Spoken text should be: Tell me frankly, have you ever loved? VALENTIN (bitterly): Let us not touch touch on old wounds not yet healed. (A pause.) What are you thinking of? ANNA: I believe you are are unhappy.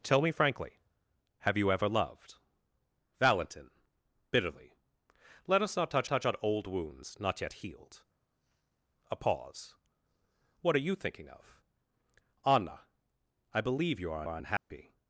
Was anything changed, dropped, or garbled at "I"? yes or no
no